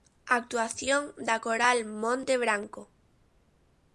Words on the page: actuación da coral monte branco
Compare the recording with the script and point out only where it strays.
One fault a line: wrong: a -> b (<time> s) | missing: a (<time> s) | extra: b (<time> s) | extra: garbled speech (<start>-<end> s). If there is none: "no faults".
no faults